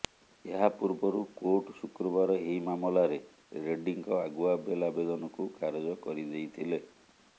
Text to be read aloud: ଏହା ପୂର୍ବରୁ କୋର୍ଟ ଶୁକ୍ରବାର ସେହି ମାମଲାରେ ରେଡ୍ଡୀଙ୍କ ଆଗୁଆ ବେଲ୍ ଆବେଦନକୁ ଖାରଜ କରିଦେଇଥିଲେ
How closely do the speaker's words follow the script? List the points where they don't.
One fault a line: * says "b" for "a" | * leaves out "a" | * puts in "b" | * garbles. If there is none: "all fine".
* says "ଏହି" for "ସେହି"